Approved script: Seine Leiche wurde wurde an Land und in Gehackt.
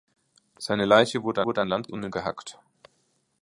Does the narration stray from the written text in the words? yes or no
no